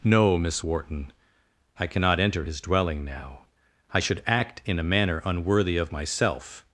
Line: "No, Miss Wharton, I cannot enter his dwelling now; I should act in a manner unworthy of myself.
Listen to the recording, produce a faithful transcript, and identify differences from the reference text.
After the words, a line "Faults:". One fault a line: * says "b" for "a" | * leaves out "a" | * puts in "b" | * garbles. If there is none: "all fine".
"No, Miss Wharton, I cannot enter his dwelling now; I should act in a manner unworthy of myself.
Faults:
all fine